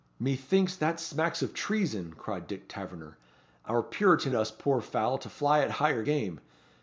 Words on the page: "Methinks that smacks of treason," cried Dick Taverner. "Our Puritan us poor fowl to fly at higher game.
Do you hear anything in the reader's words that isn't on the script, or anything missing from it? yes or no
no